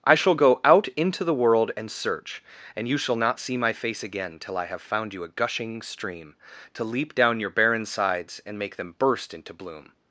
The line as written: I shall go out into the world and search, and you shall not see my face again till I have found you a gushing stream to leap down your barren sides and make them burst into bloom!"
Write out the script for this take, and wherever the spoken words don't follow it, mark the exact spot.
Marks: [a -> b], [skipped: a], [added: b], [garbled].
I shall go out into the world and search, and you shall not see my face again till I have found you a gushing stream to leap down your barren sides and make them burst into bloom!"